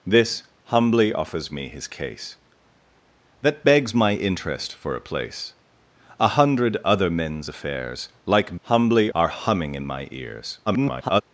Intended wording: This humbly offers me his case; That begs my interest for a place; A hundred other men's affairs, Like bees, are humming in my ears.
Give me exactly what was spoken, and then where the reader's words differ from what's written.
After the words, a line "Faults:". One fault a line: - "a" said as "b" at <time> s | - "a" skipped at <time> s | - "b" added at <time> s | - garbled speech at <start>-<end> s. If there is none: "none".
This humbly offers me his case; That begs my interest for a place; A hundred other men's affairs, Like humbly, are humming in my ears. [garbled]
Faults:
- "bees" said as "humbly" at 8.6 s
- garbled speech at 10.7-11.2 s